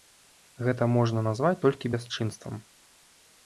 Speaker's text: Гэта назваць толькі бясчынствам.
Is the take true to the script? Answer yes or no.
no